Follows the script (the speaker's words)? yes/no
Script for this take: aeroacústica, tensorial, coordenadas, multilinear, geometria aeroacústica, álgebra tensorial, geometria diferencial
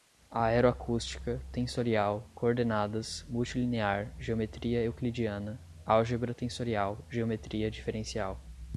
no